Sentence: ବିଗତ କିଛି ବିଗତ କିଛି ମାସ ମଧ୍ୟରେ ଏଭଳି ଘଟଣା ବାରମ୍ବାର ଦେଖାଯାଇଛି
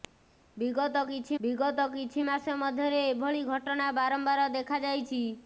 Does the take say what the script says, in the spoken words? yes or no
yes